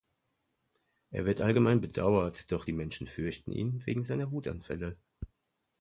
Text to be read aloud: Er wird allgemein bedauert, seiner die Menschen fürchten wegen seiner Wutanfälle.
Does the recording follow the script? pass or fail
fail